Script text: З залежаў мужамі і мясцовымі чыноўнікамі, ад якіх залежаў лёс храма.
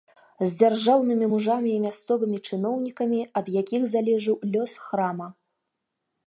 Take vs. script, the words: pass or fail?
fail